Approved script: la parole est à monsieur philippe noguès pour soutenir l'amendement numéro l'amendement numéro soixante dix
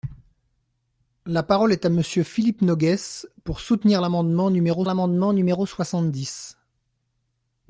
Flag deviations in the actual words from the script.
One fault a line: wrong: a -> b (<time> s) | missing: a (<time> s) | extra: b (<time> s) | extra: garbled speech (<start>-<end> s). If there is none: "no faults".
no faults